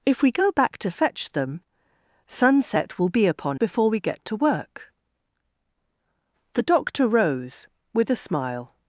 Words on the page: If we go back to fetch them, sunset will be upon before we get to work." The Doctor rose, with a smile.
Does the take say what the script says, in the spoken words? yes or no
yes